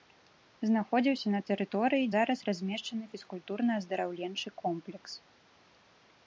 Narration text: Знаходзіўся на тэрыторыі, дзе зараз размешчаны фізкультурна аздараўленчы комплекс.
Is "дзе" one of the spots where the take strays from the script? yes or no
yes